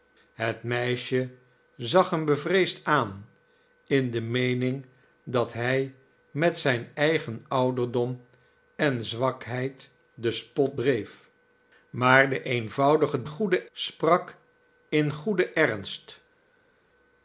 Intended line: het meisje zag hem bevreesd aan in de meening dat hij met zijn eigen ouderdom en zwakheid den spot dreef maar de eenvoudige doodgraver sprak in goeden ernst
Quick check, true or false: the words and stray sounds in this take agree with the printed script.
false